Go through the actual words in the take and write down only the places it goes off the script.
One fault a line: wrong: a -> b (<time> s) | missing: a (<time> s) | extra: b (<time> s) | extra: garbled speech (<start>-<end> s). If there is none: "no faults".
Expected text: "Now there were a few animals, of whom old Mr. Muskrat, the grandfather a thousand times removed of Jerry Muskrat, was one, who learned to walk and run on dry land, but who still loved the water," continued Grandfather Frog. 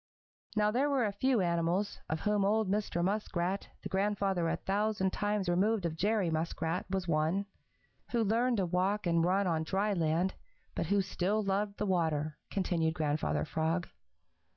no faults